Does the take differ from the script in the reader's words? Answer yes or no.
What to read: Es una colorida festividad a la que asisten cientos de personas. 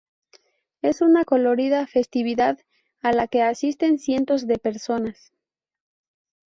no